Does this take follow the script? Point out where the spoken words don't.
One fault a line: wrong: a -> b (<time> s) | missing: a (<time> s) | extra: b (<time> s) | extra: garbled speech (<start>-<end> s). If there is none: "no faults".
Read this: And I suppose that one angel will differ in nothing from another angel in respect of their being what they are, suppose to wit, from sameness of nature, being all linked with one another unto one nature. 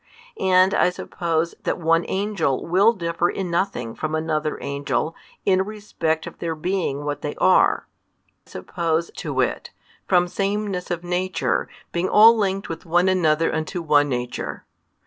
no faults